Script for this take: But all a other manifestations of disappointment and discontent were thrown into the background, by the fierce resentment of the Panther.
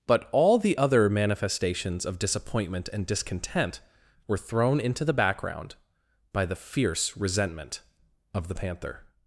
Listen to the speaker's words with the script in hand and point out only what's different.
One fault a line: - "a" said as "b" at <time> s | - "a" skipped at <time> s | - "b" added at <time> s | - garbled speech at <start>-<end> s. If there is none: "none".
- "a" said as "the" at 0.6 s